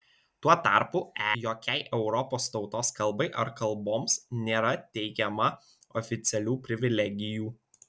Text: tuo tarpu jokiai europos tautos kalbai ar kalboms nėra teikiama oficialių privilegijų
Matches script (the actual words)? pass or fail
pass